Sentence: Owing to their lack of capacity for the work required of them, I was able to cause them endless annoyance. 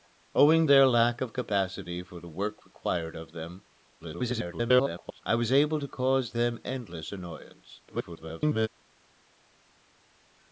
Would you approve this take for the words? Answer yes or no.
no